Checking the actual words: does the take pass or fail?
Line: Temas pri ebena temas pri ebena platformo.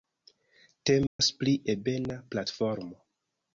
fail